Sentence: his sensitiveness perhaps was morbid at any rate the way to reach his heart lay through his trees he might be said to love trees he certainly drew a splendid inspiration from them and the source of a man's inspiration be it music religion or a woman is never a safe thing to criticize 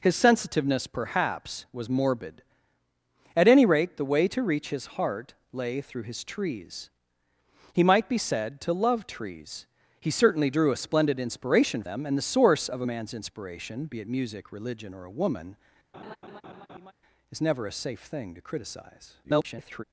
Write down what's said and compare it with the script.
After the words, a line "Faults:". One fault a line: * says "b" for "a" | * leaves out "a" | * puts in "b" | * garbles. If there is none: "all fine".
his sensitiveness perhaps was morbid at any rate the way to reach his heart lay through his trees he might be said to love trees he certainly drew a splendid inspiration them and the source of a man's inspiration be it music religion or a woman is never a safe thing to criticize [garbled]
Faults:
* leaves out "from"
* garbles